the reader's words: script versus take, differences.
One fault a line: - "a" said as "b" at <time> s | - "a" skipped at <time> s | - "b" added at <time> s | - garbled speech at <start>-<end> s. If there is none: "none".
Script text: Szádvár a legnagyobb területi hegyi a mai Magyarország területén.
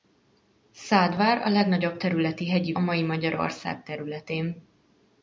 none